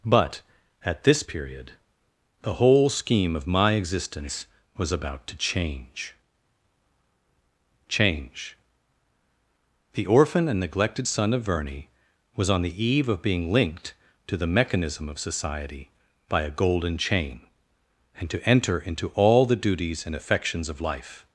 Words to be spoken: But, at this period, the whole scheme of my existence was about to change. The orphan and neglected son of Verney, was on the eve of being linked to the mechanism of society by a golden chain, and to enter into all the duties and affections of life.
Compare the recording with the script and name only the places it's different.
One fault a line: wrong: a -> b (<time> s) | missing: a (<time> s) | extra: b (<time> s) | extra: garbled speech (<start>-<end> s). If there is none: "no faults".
extra: change (7.9 s)